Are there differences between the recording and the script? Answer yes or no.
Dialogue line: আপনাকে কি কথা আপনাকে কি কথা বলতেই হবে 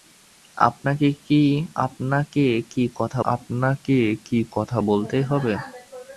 no